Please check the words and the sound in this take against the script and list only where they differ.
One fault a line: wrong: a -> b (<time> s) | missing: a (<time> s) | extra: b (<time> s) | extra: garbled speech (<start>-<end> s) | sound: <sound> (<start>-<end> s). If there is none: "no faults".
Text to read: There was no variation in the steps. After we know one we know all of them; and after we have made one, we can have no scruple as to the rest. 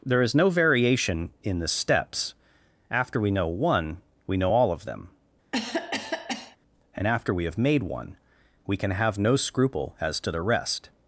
wrong: was -> is (0.2 s)
sound: cough (5.5-6.6 s)